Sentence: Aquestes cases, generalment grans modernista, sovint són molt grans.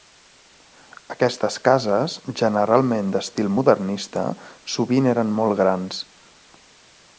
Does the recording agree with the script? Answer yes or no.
no